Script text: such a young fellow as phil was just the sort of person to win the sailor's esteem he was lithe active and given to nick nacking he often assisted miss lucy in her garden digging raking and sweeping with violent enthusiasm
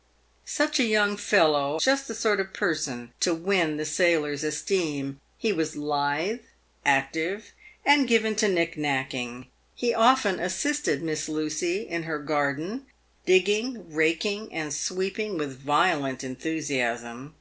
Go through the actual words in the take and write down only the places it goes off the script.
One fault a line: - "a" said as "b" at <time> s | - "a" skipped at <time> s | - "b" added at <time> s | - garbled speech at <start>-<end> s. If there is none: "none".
- "as phil was" skipped at 1.8 s